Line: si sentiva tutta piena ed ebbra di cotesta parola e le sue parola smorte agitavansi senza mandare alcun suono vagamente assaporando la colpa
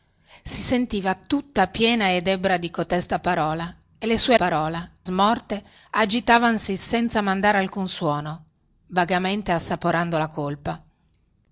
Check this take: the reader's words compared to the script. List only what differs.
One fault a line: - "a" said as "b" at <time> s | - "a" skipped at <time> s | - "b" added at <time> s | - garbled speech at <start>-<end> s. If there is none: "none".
none